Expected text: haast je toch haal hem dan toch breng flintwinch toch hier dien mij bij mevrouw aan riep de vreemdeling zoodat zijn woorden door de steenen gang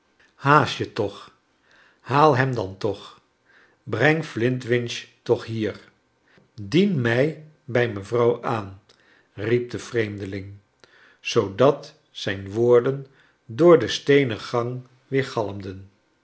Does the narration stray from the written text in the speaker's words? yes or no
no